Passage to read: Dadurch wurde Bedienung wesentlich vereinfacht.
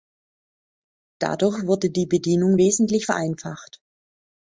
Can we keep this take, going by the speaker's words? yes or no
no